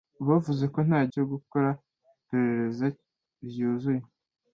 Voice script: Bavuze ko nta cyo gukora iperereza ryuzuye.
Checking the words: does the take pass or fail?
pass